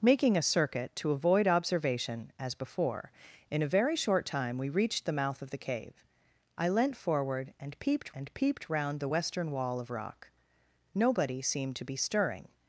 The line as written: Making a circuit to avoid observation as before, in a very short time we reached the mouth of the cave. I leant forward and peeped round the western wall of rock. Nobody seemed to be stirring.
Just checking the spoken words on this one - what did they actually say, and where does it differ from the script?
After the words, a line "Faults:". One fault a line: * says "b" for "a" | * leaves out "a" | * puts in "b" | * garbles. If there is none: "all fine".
Making a circuit to avoid observation as before, in a very short time we reached the mouth of the cave. I leant forward and peeped and peeped round the western wall of rock. Nobody seemed to be stirring.
Faults:
* puts in "and peeped"